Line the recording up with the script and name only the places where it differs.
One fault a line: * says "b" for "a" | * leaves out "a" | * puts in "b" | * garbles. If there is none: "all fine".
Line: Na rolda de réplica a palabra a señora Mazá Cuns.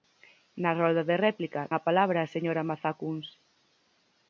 all fine